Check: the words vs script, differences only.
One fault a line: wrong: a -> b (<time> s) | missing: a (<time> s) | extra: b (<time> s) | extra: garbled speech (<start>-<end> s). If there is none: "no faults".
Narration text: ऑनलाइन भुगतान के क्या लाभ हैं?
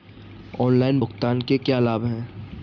no faults